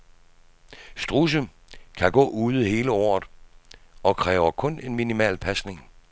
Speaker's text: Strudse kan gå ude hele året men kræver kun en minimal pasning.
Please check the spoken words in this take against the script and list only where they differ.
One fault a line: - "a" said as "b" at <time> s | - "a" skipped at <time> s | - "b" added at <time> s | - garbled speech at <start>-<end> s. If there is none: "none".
- "men" said as "og" at 4.0 s